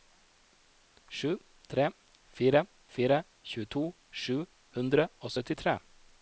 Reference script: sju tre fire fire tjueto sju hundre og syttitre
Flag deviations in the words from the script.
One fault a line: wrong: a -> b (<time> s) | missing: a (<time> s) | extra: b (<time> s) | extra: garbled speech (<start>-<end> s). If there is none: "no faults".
no faults